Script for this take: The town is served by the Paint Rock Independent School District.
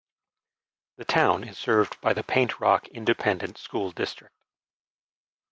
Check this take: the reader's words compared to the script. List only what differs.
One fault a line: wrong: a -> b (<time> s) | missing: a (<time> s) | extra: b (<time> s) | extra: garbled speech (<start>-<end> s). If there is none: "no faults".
no faults